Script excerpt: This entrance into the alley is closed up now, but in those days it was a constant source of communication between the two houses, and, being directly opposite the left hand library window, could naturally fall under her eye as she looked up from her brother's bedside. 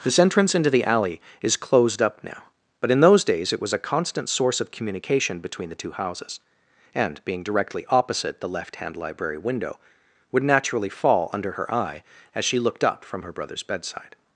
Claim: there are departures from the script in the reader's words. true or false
true